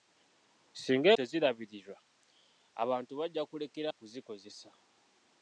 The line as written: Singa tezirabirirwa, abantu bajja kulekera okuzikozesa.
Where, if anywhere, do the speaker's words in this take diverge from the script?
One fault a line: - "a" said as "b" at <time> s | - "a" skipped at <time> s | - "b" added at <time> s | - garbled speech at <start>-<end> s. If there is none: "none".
none